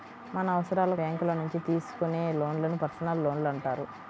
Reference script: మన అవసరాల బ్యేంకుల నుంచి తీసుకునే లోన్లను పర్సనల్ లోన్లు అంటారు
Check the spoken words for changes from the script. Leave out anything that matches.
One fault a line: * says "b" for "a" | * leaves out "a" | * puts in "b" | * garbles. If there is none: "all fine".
all fine